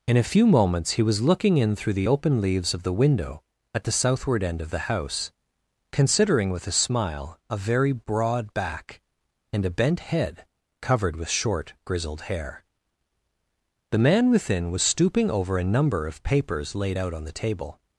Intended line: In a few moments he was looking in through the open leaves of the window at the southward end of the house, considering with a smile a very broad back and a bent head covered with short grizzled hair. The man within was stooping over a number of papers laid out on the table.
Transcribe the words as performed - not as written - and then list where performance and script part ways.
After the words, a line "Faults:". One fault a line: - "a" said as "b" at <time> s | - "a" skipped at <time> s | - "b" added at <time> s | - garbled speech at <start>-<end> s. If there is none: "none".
In a few moments he was looking in through the open leaves of the window at the southward end of the house, considering with a smile a very broad back and a bent head covered with short grizzled hair. The man within was stooping over a number of papers laid out on the table.
Faults:
none